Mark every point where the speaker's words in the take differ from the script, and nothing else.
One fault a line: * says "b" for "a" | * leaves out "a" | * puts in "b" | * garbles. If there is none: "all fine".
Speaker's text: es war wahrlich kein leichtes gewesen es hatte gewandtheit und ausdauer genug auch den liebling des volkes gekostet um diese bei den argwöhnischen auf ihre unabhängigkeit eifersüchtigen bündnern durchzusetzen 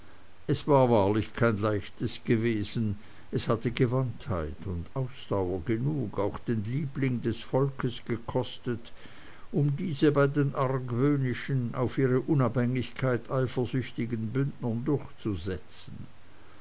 all fine